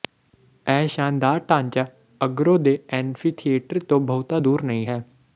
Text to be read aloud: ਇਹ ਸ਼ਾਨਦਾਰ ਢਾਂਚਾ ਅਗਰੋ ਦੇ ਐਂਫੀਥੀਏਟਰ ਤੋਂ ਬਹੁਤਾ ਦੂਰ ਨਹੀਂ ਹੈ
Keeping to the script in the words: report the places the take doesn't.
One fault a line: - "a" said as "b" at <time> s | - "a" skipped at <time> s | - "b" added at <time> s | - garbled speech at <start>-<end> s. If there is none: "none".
none